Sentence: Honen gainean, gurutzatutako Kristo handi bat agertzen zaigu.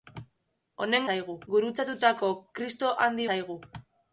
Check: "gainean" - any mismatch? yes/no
yes